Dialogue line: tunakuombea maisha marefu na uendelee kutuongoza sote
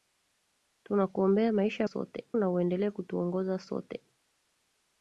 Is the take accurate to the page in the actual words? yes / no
no